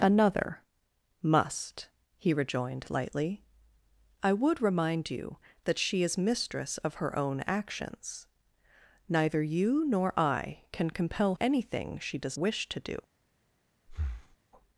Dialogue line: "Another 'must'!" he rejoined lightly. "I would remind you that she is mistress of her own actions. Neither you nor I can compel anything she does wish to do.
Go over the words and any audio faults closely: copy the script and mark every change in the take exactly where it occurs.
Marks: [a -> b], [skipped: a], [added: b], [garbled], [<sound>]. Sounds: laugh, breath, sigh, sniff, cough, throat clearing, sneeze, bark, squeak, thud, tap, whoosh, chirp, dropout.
"Another 'must'!" he rejoined lightly. "I would remind you that she is mistress of her own actions. Neither you nor I can compel anything she does wish to do. [breath]